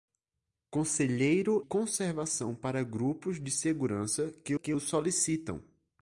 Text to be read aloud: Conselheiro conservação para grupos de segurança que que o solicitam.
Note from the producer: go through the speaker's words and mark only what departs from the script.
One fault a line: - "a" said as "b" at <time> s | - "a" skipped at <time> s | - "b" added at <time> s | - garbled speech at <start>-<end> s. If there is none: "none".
none